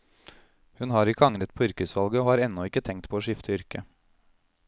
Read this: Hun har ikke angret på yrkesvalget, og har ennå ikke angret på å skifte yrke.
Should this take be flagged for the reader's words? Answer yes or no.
yes